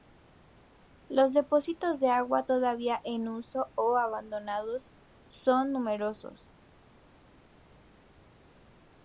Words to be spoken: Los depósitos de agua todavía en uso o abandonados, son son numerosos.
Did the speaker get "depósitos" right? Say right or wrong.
right